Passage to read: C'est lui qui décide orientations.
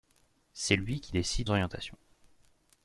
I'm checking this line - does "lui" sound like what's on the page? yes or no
yes